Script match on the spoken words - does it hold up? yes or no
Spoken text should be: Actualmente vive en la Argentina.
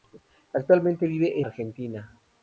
no